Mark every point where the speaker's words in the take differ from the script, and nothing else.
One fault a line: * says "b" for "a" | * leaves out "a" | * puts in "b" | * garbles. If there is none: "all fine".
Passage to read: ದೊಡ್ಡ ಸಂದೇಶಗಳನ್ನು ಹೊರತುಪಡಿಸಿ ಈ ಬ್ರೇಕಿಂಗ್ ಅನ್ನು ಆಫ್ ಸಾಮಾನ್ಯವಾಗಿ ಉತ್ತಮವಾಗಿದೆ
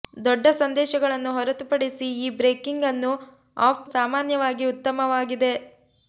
all fine